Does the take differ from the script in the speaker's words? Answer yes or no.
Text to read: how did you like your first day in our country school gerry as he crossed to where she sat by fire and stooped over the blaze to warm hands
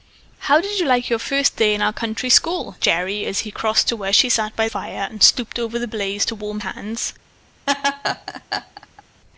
no